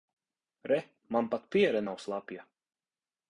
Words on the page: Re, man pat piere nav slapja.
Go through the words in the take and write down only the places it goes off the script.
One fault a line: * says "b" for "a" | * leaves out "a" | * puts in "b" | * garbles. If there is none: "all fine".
all fine